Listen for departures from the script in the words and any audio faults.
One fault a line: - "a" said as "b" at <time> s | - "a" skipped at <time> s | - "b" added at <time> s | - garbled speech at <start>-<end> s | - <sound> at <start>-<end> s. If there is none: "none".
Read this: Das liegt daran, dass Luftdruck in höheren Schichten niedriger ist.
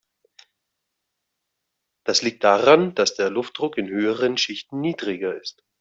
- "der" added at 3.1 s